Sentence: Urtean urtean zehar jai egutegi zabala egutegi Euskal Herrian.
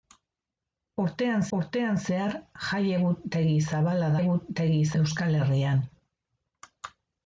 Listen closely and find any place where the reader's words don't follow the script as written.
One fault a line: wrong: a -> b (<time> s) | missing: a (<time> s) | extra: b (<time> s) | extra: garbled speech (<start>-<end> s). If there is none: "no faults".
no faults